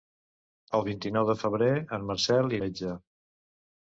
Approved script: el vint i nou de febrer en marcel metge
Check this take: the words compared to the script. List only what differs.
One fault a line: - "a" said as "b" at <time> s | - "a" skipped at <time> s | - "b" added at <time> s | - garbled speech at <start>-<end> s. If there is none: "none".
none